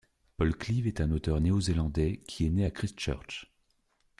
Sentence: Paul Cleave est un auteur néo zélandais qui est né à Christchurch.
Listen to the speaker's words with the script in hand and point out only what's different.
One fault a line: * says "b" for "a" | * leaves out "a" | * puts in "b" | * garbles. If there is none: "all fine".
all fine